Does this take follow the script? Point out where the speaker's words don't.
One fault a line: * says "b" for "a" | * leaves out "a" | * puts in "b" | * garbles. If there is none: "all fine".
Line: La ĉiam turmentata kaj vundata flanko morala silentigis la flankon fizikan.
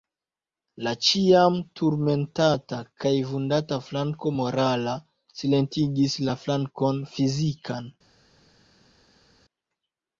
all fine